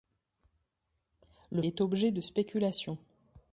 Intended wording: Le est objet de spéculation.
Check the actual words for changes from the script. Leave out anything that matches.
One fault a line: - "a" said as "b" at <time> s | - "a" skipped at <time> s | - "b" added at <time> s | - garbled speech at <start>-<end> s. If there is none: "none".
none